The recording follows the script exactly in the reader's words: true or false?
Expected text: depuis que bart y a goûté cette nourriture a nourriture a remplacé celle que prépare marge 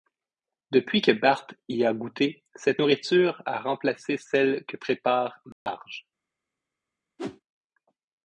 false